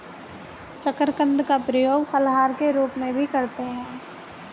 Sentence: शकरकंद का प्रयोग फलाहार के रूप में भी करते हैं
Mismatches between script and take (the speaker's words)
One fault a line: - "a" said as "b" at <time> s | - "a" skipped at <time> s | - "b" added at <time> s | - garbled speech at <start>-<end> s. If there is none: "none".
none